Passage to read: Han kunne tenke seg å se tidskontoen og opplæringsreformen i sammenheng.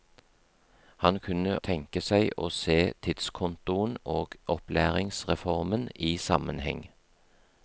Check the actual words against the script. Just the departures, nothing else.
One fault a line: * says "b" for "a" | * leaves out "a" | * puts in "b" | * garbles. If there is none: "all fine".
all fine